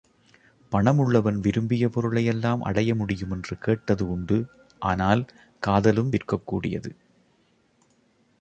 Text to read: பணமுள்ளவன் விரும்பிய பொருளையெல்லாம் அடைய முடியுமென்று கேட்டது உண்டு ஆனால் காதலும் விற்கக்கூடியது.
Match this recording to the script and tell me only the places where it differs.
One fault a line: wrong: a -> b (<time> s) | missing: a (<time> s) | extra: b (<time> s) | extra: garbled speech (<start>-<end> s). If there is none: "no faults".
no faults